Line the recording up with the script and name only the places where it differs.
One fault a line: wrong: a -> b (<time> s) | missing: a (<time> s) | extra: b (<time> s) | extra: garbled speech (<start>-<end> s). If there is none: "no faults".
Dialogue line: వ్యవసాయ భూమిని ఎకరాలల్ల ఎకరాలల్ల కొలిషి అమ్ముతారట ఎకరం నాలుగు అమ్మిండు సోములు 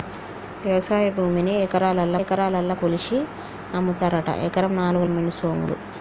no faults